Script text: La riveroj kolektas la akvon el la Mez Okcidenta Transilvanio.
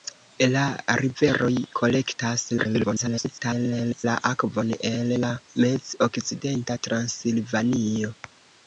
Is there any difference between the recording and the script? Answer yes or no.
yes